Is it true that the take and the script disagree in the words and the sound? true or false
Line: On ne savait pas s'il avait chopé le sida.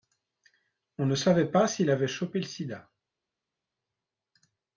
false